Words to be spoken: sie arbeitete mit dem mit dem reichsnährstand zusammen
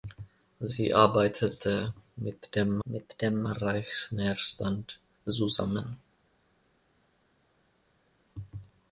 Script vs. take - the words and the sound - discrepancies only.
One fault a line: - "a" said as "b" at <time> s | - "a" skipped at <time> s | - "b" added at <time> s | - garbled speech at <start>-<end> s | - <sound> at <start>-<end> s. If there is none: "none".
none